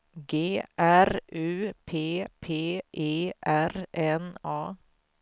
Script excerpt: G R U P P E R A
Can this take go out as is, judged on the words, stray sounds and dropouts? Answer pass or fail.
fail